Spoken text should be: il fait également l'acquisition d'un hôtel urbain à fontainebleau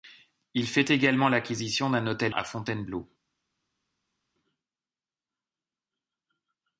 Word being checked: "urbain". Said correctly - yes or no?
no